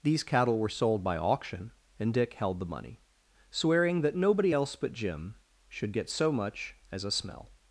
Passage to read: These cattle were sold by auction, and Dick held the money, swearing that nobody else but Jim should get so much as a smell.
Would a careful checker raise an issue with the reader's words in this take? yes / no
no